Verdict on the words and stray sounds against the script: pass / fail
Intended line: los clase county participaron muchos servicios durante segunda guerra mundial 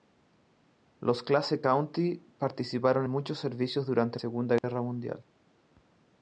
fail